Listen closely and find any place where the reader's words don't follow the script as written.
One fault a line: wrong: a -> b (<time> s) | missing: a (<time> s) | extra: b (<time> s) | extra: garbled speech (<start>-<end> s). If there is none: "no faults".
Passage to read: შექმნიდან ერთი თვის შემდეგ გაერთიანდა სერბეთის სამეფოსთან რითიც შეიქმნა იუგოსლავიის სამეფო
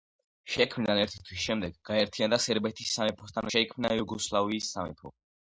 missing: რითიც (3.5 s)